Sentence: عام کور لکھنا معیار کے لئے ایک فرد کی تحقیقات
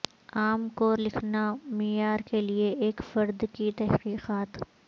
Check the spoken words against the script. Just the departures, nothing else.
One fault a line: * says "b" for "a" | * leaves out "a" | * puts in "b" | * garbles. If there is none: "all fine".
all fine